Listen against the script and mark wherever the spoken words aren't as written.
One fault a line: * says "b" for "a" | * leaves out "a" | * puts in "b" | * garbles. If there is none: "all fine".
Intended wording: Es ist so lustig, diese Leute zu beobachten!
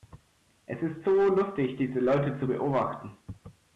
all fine